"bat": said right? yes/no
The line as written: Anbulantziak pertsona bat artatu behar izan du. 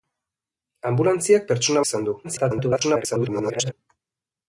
no